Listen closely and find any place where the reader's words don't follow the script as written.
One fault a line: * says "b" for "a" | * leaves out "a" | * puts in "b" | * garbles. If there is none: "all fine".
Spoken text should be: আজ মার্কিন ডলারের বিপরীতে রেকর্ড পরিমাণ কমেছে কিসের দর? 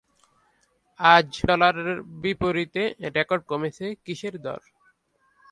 * leaves out "মার্কিন"
* leaves out "পরিমাণ"